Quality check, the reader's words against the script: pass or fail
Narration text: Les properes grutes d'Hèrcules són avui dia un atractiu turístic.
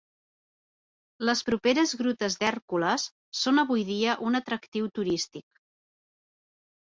pass